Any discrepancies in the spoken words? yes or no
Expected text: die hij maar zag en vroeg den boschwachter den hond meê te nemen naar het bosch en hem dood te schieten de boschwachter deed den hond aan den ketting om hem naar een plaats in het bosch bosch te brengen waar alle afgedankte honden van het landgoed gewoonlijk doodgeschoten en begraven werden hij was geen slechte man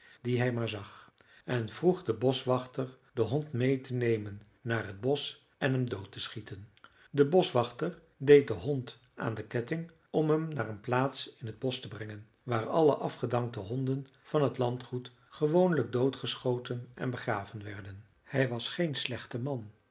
yes